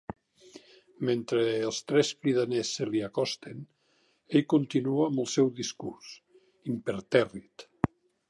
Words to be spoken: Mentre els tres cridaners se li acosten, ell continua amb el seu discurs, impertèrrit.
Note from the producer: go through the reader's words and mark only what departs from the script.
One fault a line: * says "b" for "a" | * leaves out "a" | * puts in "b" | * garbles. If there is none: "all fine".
all fine